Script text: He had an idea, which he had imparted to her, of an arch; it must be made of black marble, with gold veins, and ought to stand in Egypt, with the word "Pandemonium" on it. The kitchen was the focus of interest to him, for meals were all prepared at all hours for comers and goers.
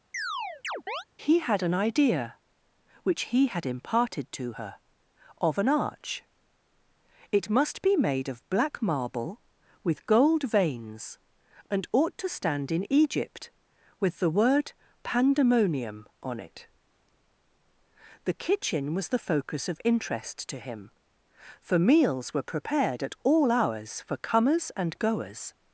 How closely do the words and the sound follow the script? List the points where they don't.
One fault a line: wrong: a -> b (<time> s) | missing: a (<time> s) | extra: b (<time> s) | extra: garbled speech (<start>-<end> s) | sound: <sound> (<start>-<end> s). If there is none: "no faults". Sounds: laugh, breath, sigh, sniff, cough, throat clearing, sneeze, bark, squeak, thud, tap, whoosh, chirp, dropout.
sound: chirp (0.1-1.0 s)
missing: all (22.6 s)